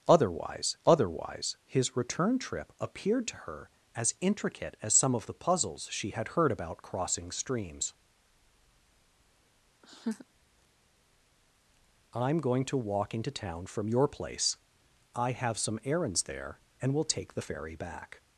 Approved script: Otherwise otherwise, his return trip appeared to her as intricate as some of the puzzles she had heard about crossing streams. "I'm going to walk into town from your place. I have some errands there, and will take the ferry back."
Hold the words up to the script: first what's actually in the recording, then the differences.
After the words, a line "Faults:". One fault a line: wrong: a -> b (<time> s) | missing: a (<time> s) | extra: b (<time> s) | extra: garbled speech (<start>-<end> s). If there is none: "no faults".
Otherwise otherwise, his return trip appeared to her as intricate as some of the puzzles she had heard about crossing streams. "I'm going to walk into town from your place. I have some errands there, and will take the ferry back."
Faults:
no faults